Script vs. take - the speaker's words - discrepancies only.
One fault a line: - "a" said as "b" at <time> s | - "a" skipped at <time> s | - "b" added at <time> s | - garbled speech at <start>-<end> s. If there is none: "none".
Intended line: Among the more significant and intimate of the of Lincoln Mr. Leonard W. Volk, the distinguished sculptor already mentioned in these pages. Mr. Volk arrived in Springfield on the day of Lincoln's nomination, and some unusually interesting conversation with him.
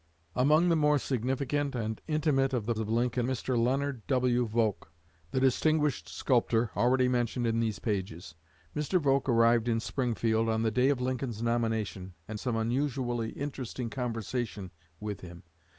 none